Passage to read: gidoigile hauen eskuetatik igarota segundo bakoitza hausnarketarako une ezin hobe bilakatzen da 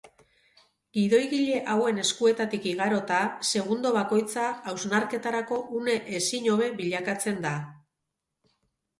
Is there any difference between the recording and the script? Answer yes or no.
no